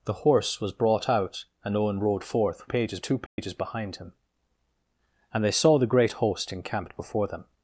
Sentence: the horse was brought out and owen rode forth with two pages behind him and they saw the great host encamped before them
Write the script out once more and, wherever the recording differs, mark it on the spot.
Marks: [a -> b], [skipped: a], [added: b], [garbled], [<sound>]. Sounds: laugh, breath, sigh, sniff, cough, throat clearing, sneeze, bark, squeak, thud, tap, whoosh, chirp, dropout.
the horse was brought out and owen rode forth [with -> pages] two pages [dropout] behind him and they saw the great host encamped before them